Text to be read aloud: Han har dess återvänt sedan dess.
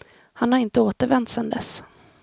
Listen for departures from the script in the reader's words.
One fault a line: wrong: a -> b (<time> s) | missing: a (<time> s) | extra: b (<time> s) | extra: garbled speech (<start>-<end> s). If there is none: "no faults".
wrong: dess -> inte (0.6 s)